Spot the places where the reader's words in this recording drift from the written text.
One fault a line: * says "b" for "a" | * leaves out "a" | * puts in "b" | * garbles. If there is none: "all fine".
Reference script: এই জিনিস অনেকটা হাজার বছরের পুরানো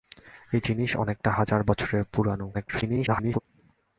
* garbles